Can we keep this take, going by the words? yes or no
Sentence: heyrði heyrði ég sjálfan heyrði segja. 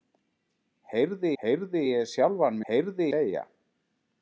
yes